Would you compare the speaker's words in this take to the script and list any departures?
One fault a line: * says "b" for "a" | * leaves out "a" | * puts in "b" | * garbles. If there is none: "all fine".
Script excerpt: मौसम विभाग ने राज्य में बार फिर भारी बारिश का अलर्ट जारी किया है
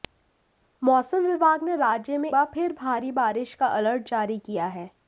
all fine